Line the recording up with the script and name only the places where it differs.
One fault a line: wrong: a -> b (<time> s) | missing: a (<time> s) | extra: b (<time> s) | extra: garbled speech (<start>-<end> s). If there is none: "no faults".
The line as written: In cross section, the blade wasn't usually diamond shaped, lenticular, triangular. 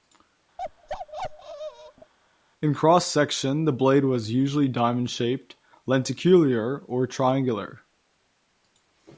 wrong: wasn't -> was (4.0 s)
extra: or (6.8 s)